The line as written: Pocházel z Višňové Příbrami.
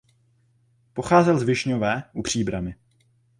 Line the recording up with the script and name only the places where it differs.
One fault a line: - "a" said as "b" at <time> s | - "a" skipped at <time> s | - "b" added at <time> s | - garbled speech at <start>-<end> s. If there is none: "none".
- "u" added at 2.1 s